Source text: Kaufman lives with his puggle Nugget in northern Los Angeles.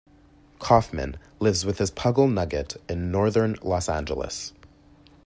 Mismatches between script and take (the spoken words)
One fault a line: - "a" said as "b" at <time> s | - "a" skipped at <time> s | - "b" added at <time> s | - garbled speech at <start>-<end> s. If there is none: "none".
none